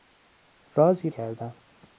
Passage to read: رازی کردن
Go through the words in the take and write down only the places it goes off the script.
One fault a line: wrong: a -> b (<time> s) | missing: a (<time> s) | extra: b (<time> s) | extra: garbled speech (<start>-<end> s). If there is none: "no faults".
no faults